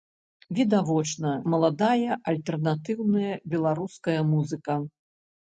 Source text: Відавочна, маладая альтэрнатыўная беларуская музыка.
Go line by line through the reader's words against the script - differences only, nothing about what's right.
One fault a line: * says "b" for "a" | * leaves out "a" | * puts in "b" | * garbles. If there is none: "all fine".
all fine